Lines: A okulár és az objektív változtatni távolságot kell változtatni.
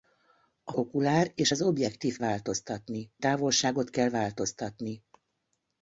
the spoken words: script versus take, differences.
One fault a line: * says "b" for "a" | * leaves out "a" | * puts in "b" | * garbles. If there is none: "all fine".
all fine